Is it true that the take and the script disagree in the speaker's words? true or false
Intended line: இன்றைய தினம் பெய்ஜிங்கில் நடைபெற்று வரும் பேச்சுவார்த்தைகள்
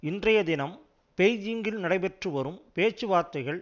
false